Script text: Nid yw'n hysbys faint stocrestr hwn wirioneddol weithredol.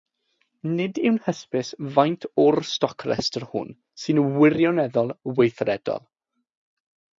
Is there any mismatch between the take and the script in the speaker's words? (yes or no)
yes